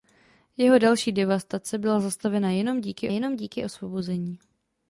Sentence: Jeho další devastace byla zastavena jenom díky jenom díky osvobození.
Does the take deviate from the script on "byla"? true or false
false